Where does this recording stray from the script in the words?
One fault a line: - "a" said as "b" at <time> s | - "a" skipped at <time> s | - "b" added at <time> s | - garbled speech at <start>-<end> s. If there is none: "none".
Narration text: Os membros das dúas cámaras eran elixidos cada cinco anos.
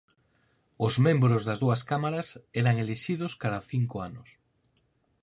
none